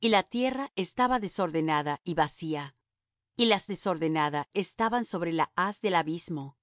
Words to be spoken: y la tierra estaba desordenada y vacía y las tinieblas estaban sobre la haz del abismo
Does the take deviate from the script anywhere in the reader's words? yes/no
yes